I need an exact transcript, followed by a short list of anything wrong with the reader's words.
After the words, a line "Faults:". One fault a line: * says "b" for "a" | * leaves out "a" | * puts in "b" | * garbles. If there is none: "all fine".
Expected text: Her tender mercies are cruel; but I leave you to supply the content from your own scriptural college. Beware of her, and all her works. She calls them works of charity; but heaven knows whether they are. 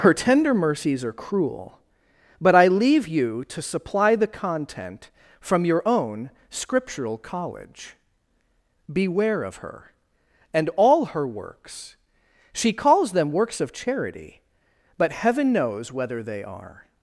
Her tender mercies are cruel; but I leave you to supply the content from your own scriptural college. Beware of her, and all her works. She calls them works of charity; but heaven knows whether they are.
Faults:
all fine